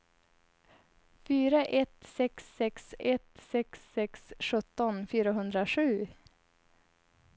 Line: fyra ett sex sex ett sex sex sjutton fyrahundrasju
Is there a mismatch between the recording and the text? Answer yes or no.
no